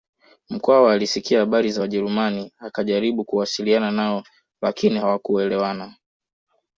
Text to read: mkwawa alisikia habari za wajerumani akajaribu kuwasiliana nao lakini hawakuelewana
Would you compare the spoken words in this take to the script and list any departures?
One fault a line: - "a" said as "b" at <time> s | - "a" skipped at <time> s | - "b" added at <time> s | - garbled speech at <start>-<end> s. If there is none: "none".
none